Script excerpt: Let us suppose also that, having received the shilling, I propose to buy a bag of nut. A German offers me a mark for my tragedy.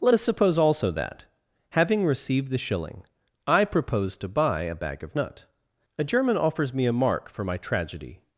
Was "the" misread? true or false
false